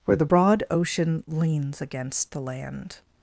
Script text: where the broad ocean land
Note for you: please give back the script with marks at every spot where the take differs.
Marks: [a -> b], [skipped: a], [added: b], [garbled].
where the broad ocean [added: leans against the] land